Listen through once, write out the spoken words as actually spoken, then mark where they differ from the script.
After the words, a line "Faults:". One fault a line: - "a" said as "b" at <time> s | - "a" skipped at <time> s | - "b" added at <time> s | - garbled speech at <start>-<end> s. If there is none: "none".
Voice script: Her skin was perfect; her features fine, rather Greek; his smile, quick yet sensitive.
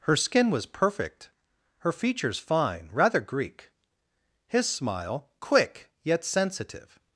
Her skin was perfect; her features fine, rather Greek; his smile, quick yet sensitive.
Faults:
none